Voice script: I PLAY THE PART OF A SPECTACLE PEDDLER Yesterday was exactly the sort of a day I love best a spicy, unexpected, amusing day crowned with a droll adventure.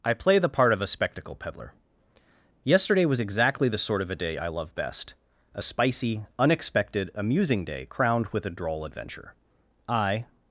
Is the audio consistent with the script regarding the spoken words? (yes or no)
no